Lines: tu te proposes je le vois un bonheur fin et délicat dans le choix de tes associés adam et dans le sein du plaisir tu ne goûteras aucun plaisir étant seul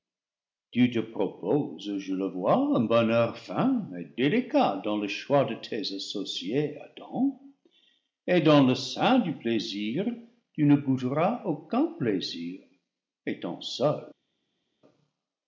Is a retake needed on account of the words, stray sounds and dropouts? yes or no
no